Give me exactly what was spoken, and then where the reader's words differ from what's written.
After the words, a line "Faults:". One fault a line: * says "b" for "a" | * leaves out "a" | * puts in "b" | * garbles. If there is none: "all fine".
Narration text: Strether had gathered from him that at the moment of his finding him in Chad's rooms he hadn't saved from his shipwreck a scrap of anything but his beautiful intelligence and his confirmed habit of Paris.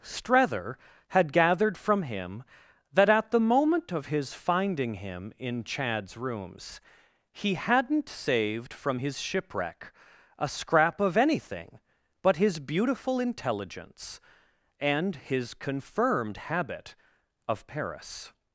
Strether had gathered from him that at the moment of his finding him in Chad's rooms he hadn't saved from his shipwreck a scrap of anything but his beautiful intelligence and his confirmed habit of Paris.
Faults:
all fine